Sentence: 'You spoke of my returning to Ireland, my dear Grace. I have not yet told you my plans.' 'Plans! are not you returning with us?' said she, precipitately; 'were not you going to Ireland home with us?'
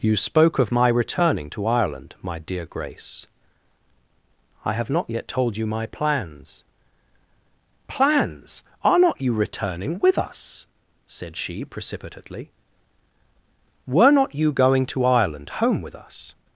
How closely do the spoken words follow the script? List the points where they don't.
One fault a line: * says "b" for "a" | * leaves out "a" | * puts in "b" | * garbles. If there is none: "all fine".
all fine